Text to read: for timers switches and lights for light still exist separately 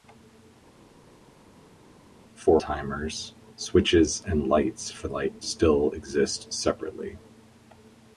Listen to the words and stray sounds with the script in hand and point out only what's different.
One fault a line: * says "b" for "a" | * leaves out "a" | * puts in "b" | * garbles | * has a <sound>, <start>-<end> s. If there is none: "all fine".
all fine